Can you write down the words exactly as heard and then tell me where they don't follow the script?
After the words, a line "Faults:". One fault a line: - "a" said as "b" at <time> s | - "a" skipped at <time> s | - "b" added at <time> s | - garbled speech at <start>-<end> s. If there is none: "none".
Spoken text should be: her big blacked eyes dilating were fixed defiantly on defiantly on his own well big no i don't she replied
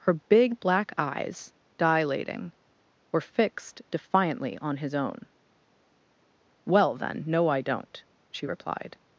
her big black eyes dilating were fixed defiantly on his own well then no i don't she replied
Faults:
- "blacked" said as "black" at 0.6 s
- "defiantly on" skipped at 4.8 s
- "big" said as "then" at 7.0 s